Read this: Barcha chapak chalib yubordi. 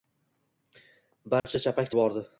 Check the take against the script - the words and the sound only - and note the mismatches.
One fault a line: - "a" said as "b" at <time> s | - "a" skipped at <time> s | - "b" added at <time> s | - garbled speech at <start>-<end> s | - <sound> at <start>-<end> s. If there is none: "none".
- dropout at 1.4-1.4 s
- "chalib" skipped at 1.9 s